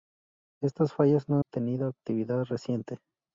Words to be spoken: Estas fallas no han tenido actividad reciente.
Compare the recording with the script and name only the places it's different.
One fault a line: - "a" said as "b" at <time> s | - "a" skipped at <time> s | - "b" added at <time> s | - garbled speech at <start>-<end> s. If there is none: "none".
- "han" skipped at 1.4 s